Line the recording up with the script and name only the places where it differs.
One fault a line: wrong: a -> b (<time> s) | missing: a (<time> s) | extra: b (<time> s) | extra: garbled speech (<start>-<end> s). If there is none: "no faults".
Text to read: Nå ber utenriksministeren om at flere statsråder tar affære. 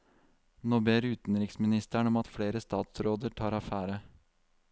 no faults